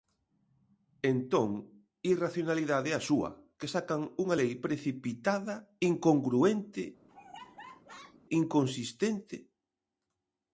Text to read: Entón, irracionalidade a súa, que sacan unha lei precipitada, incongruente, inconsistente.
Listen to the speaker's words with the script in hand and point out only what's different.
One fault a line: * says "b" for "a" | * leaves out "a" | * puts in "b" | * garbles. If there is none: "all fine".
all fine